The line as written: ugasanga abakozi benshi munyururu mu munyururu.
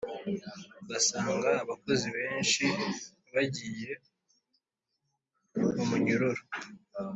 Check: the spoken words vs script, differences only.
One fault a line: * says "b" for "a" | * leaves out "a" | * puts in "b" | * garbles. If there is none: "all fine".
* says "bagiye" for "munyururu"